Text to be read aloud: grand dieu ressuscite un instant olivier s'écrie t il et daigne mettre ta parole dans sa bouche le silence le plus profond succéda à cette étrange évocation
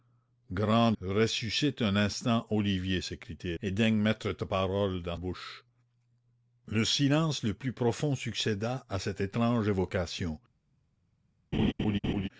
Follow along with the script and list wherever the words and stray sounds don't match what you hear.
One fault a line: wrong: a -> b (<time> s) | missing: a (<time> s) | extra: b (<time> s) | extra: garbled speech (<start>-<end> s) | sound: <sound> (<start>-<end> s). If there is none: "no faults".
missing: dieu (0.9 s)
missing: il (3.5 s)
missing: sa (5.2 s)
sound: laugh (11.5-12.3 s)